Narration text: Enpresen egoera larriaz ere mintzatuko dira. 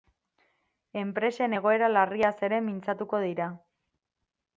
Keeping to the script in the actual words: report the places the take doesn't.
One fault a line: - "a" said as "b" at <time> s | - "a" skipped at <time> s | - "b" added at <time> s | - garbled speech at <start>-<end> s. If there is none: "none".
none